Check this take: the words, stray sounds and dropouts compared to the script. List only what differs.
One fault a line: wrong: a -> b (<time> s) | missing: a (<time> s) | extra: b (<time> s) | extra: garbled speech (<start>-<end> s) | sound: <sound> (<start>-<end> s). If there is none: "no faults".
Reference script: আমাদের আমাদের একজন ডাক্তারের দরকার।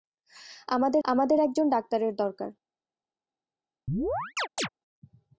sound: chirp (3.9-4.7 s)